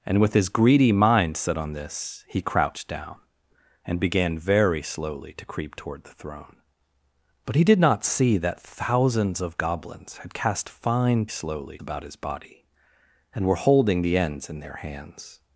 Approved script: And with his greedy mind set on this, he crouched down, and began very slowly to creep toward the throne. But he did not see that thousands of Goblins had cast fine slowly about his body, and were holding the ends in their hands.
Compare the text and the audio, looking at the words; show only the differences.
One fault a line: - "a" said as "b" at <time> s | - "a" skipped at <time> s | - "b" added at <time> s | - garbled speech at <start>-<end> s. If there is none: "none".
none